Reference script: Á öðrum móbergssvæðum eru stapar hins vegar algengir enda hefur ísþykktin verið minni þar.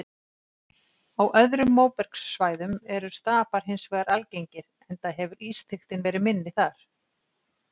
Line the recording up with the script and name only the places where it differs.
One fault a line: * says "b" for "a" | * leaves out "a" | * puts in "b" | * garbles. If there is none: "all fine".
all fine